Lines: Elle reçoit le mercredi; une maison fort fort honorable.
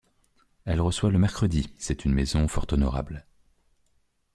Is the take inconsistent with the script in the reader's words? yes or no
yes